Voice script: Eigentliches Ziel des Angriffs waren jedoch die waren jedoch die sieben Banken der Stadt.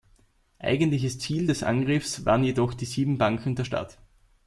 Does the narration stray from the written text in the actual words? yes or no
yes